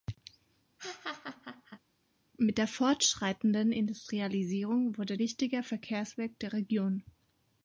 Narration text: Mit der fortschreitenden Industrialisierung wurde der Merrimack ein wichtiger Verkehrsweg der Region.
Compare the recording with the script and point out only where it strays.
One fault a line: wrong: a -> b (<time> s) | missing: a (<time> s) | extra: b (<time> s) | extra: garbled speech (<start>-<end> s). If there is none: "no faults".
missing: der Merrimack ein (5.2 s)